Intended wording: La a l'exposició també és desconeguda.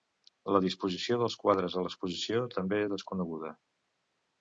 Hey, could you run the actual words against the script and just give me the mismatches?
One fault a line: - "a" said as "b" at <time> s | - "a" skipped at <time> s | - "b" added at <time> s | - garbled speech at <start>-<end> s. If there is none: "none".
- "disposició dels quadres" added at 0.6 s